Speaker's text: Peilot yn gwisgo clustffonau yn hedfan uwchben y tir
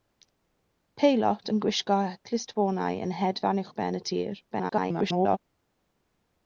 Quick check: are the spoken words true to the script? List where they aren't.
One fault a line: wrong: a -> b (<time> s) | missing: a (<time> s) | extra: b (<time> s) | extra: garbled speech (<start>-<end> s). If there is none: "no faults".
extra: garbled speech (4.5-5.4 s)